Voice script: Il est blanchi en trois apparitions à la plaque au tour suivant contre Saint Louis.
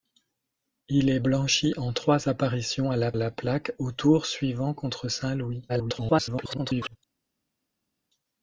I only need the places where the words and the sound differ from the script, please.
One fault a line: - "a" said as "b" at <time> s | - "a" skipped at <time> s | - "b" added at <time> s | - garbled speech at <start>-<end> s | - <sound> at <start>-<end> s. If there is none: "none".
- "la" added at 3.1 s
- garbled speech at 5.7-7.0 s